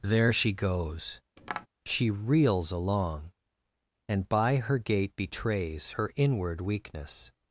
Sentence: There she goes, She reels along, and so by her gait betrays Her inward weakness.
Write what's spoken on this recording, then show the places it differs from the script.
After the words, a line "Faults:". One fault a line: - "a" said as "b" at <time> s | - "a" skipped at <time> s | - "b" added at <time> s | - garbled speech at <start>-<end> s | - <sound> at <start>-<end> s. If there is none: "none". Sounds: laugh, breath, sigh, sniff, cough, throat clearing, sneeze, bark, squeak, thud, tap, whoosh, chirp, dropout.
There she goes, She reels along, and by her gait betrays Her inward weakness.
Faults:
- tap at 1.4-1.7 s
- "so" skipped at 4.3 s